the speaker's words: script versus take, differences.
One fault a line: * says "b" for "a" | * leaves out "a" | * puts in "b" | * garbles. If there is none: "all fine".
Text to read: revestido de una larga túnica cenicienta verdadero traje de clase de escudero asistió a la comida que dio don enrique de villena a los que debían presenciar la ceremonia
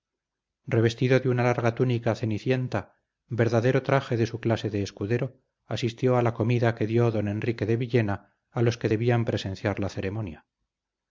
* puts in "su"